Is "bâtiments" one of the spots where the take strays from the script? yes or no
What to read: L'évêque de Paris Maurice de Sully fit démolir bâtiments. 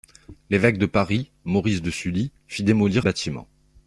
no